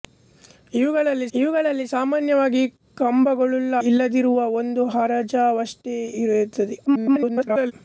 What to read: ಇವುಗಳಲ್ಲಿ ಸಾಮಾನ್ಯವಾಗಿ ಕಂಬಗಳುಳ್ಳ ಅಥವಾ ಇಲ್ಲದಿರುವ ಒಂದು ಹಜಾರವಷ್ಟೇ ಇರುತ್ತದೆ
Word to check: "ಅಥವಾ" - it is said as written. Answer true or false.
false